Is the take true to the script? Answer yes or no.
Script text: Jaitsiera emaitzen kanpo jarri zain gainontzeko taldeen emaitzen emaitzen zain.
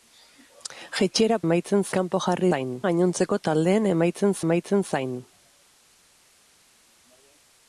yes